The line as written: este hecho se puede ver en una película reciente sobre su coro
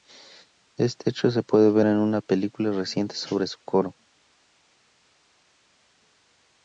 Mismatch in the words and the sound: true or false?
false